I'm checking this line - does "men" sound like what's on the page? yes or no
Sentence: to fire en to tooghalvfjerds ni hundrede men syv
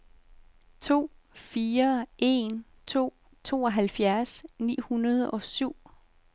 no